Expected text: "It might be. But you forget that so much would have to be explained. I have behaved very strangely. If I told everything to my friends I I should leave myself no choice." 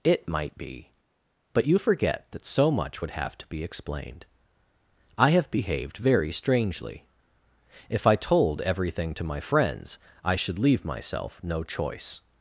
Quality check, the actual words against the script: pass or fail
fail